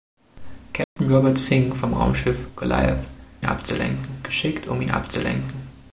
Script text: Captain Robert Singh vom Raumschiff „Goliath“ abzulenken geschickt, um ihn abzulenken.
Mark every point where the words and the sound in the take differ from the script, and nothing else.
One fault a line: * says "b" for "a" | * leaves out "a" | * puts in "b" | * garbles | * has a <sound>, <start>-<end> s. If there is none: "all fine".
* has a dropout, 0.8-1.0 s